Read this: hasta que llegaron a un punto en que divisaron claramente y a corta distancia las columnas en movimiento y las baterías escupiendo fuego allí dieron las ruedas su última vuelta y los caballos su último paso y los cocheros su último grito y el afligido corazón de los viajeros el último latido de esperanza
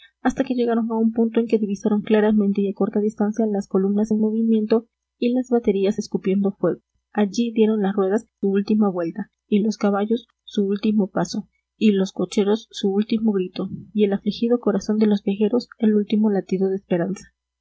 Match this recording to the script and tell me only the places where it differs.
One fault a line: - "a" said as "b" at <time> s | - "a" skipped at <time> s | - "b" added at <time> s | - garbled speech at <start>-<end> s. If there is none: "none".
none